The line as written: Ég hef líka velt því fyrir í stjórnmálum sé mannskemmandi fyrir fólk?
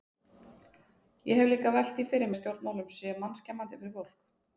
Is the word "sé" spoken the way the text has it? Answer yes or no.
yes